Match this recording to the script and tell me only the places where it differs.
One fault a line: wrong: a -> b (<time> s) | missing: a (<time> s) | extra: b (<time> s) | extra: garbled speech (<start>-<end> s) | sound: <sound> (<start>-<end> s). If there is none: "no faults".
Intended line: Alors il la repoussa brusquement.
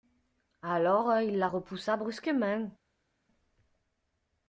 no faults